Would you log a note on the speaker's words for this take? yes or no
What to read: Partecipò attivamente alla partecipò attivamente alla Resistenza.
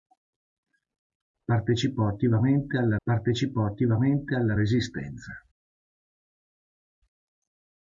no